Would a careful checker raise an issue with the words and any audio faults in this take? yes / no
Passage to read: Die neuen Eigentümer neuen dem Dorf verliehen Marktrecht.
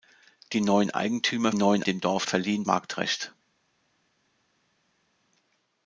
no